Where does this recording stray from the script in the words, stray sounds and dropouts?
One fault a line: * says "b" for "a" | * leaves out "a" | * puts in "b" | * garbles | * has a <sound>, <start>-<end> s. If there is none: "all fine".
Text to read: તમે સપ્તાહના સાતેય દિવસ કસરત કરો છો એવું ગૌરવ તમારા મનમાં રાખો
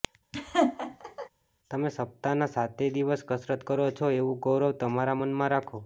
* has a laugh, 0.3-1.3 s